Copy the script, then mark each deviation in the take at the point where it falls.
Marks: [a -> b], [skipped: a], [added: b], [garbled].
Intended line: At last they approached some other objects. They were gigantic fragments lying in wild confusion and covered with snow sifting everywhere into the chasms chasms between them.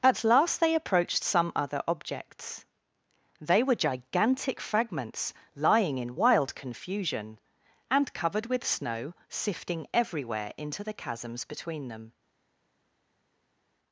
At last they approached some other objects. They were gigantic fragments lying in wild confusion and covered with snow sifting everywhere into the chasms [skipped: chasms] between them.